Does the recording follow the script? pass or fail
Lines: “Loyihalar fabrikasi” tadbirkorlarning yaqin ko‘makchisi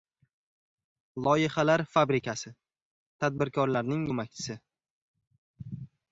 fail